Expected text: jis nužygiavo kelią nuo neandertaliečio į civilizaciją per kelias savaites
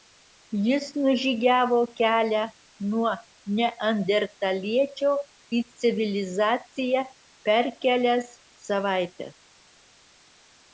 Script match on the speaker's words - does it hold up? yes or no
yes